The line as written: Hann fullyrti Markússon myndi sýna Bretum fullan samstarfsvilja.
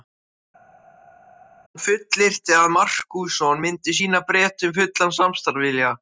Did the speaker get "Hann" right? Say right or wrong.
right